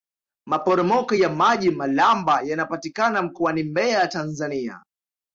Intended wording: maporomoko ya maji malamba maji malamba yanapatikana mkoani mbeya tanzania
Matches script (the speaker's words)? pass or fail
fail